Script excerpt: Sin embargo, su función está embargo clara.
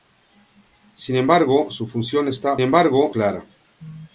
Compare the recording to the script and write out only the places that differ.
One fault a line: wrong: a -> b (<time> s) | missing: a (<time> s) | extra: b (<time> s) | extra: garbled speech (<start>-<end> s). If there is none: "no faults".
no faults